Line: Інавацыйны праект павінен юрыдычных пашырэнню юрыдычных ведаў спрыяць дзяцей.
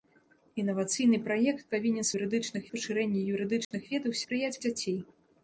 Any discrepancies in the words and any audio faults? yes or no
yes